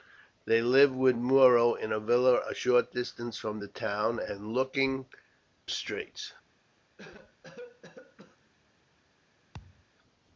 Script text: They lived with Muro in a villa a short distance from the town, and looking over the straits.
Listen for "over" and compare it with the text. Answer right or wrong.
wrong